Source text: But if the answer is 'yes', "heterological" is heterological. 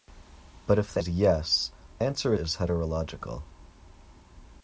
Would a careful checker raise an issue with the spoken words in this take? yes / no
yes